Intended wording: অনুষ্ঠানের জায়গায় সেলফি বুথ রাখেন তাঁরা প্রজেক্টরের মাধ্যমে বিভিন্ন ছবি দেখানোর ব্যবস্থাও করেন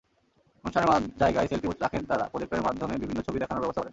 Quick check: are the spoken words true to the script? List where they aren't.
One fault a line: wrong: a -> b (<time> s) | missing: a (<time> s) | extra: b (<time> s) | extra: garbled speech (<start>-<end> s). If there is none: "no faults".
no faults